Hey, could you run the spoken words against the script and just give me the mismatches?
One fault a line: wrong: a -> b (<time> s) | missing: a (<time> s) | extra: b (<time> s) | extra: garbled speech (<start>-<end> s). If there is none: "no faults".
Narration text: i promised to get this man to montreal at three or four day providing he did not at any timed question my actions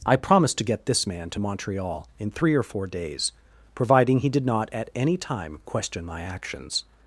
wrong: at -> in (2.2 s)
wrong: day -> days (2.9 s)
wrong: timed -> time (5.2 s)